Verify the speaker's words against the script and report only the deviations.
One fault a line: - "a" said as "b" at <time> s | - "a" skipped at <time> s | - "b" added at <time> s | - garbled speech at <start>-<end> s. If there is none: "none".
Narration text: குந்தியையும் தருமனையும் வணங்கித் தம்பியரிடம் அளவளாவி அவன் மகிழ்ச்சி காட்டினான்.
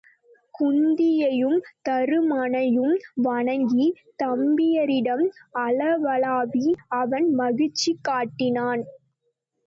none